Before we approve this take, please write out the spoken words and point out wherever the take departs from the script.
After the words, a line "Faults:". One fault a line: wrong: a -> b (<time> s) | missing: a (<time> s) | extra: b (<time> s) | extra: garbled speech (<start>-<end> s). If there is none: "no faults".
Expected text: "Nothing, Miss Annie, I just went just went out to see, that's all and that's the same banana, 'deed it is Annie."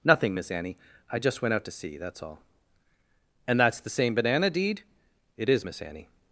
"Nothing, Miss Annie, I just went out to see, that's all and that's the same banana, 'deed it is Miss Annie."
Faults:
missing: just went (1.5 s)
extra: Miss (5.6 s)